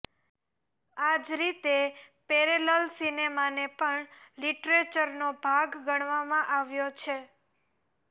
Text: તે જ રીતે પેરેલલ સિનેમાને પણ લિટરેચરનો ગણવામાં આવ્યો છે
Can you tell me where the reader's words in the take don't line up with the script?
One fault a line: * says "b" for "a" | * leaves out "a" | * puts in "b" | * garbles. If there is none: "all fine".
* says "આ" for "તે"
* puts in "ભાગ"